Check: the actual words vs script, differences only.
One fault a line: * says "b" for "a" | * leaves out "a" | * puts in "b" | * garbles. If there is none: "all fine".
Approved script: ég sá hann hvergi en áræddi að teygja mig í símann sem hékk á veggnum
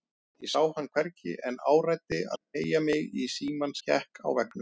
* leaves out "sem"